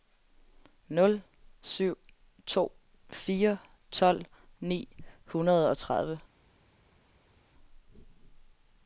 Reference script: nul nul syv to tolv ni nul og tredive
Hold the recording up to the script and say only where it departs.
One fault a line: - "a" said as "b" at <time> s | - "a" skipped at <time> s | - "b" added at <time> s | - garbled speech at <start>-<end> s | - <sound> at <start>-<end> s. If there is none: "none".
- "nul" skipped at 1.2 s
- "fire" added at 3.1 s
- "nul" said as "hundrede" at 5.2 s